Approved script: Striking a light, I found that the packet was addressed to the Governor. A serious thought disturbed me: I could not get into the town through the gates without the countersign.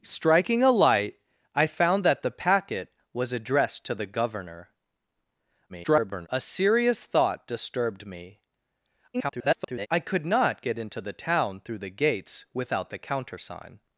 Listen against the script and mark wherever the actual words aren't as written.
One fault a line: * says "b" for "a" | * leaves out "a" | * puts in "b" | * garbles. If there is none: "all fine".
* garbles
* garbles